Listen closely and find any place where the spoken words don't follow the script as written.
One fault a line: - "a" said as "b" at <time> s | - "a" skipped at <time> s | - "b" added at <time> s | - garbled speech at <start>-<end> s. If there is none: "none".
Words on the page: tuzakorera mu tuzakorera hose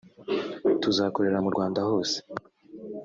- "tuzakorera" said as "rwanda" at 1.5 s